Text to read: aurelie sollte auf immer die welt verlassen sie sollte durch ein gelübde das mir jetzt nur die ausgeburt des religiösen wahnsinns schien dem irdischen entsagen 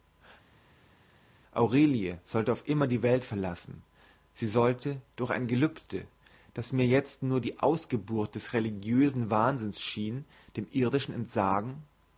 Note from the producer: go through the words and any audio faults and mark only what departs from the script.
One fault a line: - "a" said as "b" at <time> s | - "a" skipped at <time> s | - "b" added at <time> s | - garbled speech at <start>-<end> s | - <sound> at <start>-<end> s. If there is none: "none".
none